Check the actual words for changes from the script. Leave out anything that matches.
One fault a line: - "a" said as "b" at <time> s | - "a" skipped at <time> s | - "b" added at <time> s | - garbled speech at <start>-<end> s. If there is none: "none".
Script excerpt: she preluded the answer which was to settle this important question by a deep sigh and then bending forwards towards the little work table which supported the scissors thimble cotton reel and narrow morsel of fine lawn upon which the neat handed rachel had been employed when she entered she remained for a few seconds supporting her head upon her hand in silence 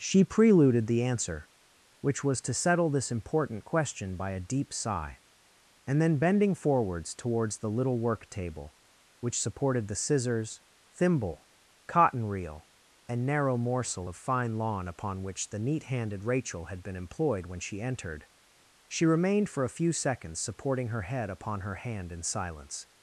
none